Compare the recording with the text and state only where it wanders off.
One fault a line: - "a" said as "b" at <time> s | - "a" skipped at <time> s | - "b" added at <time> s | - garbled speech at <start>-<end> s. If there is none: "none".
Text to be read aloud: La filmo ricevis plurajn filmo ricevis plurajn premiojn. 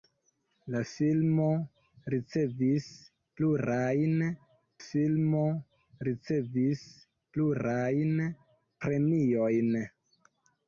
none